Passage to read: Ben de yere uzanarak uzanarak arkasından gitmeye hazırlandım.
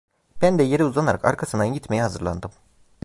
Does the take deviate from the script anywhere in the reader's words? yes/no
yes